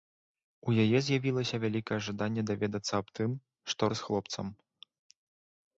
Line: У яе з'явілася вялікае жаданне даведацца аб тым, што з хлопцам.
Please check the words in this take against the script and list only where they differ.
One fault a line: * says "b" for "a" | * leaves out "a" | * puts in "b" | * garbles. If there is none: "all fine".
all fine